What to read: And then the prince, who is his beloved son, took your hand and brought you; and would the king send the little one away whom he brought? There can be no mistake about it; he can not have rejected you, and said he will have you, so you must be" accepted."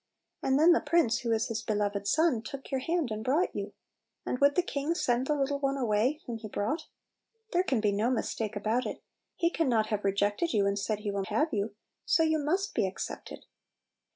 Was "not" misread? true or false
false